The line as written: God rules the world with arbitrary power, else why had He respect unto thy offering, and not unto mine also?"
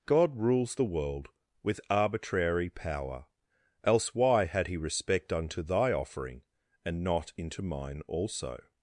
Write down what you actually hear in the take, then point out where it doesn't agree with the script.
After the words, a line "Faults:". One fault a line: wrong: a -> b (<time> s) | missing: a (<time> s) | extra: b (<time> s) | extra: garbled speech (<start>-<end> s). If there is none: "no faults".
God rules the world with arbitrary power, else why had He respect unto thy offering, and not into mine also?"
Faults:
wrong: unto -> into (7.4 s)